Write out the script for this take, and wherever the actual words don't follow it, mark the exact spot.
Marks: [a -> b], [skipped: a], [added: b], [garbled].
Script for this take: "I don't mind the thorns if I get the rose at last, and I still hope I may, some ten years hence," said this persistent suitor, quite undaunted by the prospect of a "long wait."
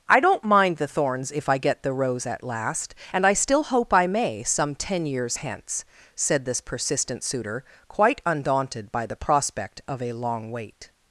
"I don't mind the thorns if I get the rose at last, and I still hope I may, some ten years hence," said this persistent suitor, quite undaunted by the prospect of a "long wait."